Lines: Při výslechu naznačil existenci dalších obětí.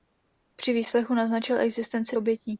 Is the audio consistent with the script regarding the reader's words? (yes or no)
no